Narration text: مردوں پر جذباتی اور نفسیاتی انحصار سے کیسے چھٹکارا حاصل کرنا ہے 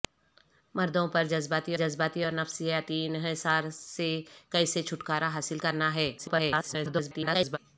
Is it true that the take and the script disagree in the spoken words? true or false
true